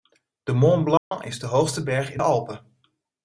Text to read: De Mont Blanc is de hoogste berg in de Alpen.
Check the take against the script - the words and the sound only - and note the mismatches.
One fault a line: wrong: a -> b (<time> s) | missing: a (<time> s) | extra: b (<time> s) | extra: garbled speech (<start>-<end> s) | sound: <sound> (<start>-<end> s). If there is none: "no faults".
sound: dropout (1.0-1.1 s)